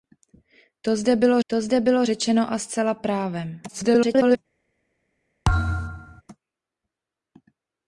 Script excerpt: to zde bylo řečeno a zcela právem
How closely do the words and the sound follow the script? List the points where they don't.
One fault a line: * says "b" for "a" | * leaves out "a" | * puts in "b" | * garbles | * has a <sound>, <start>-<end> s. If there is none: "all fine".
* puts in "to zde bylo"
* garbles
* has a thud, 5.4-6.2 s